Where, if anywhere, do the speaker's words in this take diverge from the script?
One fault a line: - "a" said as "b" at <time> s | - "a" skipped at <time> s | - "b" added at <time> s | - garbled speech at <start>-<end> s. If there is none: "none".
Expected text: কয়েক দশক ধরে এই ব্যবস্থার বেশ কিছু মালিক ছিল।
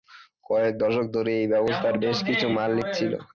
none